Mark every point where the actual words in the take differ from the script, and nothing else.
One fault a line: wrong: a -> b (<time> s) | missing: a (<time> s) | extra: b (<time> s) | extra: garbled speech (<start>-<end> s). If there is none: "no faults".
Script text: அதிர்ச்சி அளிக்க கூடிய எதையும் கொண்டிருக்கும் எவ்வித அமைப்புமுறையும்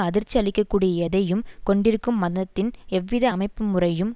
extra: மதத்தின் (2.2 s)